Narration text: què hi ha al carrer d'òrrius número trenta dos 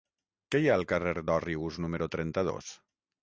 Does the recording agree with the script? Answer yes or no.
yes